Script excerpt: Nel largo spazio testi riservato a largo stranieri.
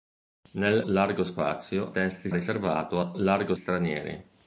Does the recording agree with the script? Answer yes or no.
yes